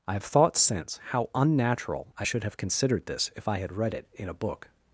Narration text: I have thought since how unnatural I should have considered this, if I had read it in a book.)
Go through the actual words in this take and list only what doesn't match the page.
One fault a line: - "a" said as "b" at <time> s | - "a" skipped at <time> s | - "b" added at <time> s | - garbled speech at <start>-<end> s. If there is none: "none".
none